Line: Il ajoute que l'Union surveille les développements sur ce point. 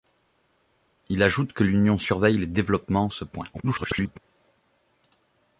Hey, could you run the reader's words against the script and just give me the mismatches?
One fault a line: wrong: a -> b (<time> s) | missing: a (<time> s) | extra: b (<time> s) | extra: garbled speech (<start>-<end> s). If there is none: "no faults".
missing: sur (3.1 s)
extra: garbled speech (3.5-4.2 s)